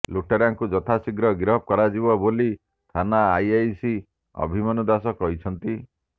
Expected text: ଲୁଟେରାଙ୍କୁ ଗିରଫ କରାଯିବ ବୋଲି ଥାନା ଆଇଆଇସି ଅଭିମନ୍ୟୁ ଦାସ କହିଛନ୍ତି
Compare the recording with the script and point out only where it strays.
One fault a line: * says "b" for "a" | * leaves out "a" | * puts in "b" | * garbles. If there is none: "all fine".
* puts in "ଯଥାଶୀଘ୍ର"